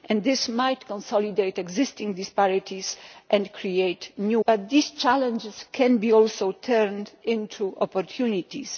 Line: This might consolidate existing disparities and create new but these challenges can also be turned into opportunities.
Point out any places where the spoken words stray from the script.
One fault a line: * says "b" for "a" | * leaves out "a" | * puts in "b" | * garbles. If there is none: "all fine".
all fine